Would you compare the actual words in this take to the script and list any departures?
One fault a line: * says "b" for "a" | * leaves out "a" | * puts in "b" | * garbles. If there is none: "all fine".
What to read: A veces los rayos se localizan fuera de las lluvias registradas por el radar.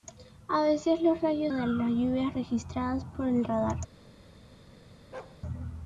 * leaves out "se localizan fuera"